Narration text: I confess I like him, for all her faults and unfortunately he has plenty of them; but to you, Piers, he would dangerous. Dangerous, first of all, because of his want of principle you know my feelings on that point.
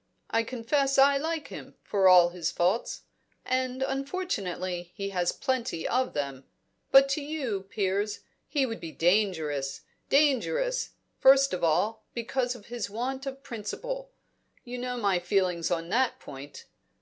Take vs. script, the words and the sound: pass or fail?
fail